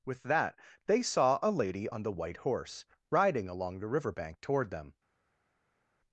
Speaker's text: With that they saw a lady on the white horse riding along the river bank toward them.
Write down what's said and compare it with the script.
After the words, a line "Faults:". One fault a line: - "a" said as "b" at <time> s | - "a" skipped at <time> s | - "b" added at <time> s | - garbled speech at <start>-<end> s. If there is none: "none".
With that they saw a lady on the white horse riding along the river bank toward them.
Faults:
none